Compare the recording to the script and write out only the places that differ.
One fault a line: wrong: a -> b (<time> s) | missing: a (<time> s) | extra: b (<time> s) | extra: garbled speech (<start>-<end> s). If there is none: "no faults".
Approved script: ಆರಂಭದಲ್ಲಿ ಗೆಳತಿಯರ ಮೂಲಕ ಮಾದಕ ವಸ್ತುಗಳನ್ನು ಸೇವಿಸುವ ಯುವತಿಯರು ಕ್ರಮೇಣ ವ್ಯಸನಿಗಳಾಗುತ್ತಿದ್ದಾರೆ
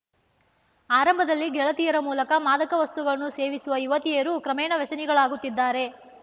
no faults